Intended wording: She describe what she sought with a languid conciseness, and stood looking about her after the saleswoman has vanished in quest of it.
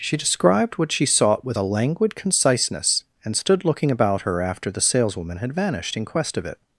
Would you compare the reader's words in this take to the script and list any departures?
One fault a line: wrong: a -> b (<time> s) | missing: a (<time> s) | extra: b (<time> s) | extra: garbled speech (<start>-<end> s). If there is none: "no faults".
wrong: describe -> described (0.2 s)
wrong: has -> had (5.4 s)